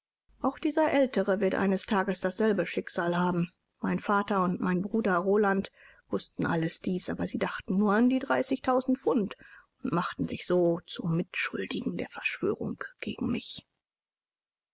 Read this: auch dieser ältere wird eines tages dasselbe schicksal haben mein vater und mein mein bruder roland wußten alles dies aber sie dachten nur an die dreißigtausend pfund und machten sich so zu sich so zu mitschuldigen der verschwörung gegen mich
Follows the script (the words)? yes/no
no